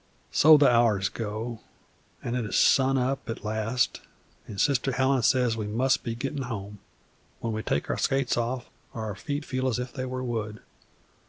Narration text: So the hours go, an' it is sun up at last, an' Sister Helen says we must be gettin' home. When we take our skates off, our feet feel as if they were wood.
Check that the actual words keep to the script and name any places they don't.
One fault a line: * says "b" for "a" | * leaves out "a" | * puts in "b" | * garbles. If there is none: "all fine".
all fine